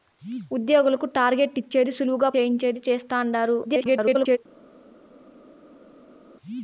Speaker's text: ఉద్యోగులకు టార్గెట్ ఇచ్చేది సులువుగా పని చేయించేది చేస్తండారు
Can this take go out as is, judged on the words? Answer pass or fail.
fail